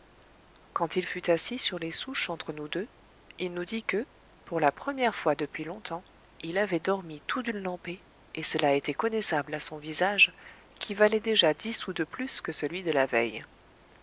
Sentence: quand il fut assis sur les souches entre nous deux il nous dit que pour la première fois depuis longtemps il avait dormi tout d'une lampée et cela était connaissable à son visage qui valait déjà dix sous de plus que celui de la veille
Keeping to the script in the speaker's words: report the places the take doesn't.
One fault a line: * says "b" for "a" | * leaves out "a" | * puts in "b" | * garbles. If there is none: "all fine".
all fine